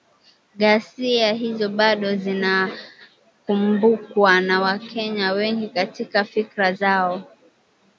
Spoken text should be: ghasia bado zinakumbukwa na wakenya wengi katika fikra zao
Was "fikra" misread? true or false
false